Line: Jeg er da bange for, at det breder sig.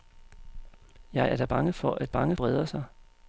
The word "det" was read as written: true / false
false